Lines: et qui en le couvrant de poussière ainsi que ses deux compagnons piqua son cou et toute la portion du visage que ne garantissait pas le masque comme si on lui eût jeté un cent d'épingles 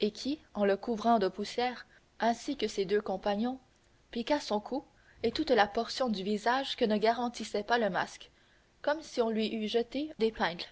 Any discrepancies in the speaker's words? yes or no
yes